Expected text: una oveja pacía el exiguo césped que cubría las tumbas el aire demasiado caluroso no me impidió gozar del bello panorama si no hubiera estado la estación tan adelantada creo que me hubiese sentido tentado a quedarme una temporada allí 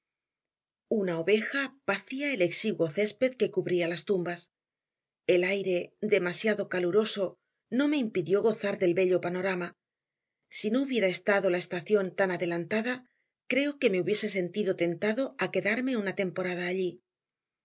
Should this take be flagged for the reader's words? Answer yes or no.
no